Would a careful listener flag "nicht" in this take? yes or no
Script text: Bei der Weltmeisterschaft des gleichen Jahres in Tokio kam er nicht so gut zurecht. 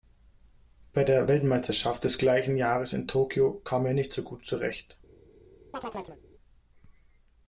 no